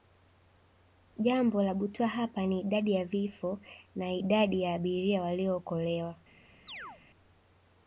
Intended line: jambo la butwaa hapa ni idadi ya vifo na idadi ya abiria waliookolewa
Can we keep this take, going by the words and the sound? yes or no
no